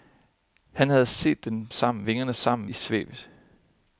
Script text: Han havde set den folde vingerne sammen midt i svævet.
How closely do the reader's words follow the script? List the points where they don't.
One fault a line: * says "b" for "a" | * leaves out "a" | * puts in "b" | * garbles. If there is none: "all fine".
* says "sammen" for "folde"
* leaves out "midt"